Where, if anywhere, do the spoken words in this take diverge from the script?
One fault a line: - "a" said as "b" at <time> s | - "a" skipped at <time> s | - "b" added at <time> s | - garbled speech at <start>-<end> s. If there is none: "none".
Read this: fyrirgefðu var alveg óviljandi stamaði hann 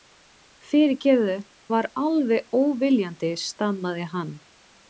none